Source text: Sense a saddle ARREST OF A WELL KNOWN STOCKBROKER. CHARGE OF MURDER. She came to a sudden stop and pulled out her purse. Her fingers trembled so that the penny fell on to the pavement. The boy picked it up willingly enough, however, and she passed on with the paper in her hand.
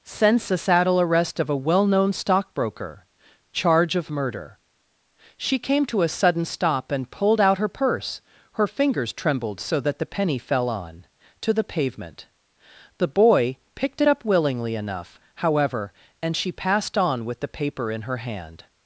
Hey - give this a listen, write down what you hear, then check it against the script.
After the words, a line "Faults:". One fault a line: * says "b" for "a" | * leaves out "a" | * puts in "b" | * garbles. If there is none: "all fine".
Sense a saddle ARREST OF A WELL KNOWN STOCKBROKER. CHARGE OF MURDER. She came to a sudden stop and pulled out her purse. Her fingers trembled so that the penny fell on to the pavement. The boy picked it up willingly enough, however, and she passed on with the paper in her hand.
Faults:
all fine